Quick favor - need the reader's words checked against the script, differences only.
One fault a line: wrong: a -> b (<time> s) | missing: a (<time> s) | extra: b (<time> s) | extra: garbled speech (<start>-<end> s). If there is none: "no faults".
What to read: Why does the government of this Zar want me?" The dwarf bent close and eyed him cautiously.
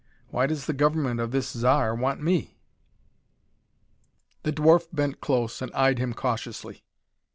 no faults